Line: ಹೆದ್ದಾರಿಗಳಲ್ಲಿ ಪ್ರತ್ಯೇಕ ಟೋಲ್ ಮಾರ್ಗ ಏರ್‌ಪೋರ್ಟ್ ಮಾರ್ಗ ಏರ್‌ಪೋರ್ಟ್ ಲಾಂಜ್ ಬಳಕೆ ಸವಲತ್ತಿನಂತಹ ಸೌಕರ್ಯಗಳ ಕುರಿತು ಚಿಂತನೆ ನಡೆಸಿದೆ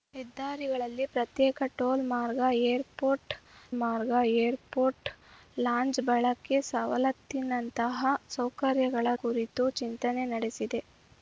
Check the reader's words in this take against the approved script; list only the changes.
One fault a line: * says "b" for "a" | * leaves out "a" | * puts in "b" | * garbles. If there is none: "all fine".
all fine